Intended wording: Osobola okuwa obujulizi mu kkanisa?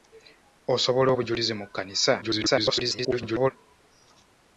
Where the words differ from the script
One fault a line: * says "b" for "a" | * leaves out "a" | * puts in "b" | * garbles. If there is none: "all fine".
* leaves out "okuwa"
* garbles